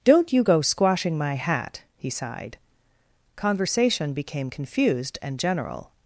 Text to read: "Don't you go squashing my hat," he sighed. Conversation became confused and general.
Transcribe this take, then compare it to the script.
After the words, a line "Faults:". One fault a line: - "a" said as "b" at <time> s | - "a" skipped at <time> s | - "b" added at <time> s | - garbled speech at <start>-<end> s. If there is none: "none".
"Don't you go squashing my hat," he sighed. Conversation became confused and general.
Faults:
none